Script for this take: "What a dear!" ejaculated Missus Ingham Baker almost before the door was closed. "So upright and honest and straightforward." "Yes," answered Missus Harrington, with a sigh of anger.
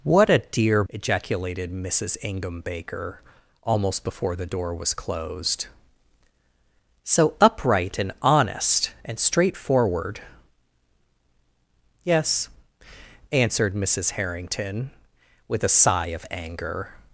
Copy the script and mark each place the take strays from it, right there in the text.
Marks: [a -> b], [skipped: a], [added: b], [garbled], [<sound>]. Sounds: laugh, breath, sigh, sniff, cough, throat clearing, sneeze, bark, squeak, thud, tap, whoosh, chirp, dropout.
"What a dear!" ejaculated Missus Ingham Baker almost before the door was closed. "So upright and honest and straightforward." "Yes," answered Missus Harrington, with a sigh of anger.